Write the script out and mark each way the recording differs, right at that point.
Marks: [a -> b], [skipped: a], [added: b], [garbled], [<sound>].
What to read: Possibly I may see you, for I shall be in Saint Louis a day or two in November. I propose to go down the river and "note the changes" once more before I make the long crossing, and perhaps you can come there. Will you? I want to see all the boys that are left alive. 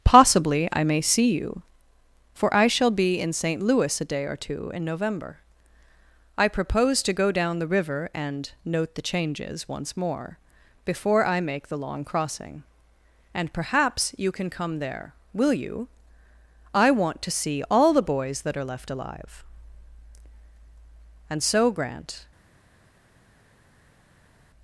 Possibly I may see you, for I shall be in Saint Louis a day or two in November. I propose to go down the river and "note the changes" once more before I make the long crossing, and perhaps you can come there. Will you? I want to see all the boys that are left alive. [added: And so Grant]